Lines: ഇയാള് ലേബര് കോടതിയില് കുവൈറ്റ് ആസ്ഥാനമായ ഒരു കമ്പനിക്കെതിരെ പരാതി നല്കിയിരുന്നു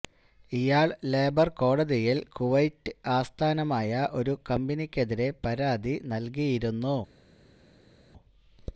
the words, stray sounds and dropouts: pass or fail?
pass